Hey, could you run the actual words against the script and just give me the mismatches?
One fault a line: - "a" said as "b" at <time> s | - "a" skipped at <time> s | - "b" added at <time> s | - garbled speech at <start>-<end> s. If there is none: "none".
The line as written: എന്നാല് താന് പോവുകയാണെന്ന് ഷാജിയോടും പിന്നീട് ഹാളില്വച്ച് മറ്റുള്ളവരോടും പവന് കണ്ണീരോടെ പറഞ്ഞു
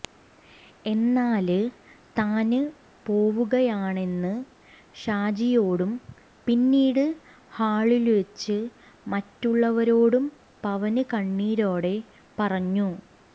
none